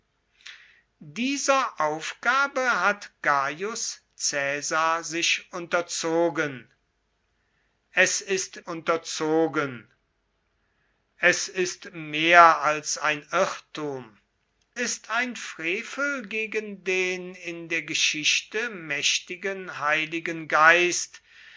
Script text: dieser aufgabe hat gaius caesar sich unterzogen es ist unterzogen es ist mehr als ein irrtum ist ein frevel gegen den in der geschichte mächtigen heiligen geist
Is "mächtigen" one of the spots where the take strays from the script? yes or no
no